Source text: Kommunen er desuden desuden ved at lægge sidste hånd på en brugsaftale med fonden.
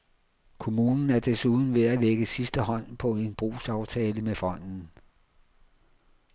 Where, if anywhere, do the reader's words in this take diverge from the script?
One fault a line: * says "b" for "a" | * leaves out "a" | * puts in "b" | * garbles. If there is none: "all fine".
* leaves out "desuden"